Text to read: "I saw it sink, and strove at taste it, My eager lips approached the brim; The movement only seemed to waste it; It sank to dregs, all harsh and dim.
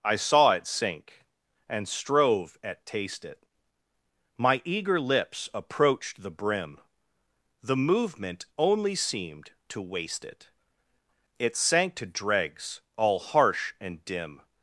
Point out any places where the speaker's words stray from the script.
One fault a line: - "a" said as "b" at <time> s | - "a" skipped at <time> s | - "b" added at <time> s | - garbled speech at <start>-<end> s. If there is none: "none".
none